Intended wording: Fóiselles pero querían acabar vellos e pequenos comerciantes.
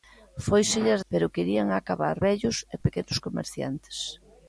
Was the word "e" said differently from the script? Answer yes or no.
no